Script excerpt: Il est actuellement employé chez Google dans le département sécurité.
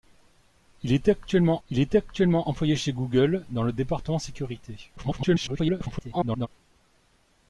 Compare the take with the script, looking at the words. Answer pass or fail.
fail